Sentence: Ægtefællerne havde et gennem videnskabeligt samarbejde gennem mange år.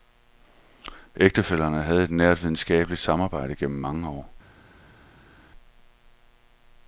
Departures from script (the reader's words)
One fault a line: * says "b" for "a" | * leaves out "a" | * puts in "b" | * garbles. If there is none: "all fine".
* says "nært" for "gennem"